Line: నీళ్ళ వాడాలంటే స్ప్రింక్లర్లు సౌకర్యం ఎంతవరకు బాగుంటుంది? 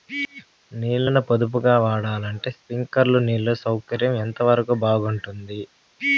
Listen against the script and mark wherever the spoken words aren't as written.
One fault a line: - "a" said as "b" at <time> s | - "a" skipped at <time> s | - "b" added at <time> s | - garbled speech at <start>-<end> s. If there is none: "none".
- "ని పొదుపుగా" added at 1.1 s
- "నీళ్లు" added at 3.2 s